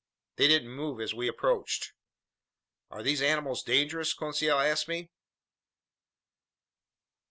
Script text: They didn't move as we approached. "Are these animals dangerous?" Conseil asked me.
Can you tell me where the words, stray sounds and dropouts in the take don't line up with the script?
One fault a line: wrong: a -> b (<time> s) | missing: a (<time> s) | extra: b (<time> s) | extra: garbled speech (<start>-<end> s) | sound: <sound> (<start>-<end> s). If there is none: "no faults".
no faults